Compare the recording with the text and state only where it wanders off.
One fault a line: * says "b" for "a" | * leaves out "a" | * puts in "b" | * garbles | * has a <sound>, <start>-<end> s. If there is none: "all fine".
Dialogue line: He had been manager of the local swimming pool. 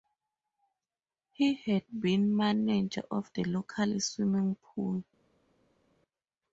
all fine